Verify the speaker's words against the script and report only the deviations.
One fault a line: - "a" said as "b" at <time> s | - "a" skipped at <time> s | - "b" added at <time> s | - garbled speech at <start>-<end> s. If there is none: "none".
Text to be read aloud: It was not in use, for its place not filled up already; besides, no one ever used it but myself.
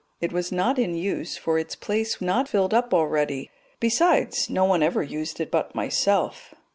none